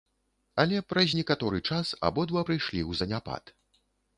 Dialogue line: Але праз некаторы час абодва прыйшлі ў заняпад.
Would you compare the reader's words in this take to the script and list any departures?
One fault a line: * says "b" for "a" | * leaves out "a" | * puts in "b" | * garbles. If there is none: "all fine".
all fine